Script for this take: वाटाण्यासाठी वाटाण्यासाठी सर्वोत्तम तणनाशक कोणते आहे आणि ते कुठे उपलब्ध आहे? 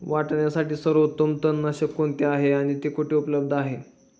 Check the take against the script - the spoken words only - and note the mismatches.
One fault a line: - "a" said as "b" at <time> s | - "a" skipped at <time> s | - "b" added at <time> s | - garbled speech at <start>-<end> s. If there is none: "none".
- "वाटाण्यासाठी" skipped at 0.7 s